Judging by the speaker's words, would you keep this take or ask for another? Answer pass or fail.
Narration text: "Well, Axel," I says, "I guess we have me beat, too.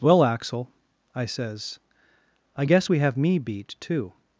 pass